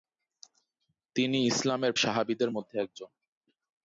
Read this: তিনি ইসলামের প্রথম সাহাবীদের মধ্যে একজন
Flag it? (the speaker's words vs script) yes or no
yes